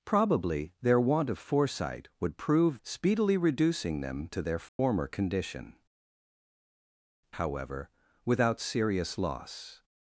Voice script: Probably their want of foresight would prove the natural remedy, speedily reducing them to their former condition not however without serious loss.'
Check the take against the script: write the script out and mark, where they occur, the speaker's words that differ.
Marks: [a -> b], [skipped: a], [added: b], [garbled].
Probably their want of foresight would prove [skipped: the natural remedy,] speedily reducing them to their former condition [skipped: not] however without serious loss.'